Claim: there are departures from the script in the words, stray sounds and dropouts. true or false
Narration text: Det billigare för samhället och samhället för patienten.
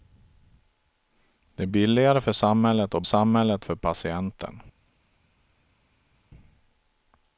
false